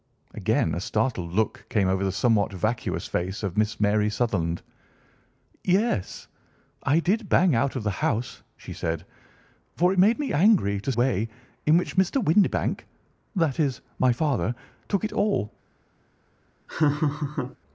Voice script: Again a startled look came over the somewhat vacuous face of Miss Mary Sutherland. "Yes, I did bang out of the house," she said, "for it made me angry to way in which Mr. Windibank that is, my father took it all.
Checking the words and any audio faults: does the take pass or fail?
fail